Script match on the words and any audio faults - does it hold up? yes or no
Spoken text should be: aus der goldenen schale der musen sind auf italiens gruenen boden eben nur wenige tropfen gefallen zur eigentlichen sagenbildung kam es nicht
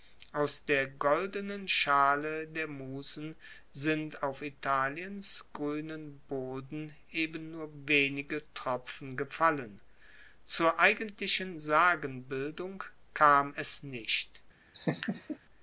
no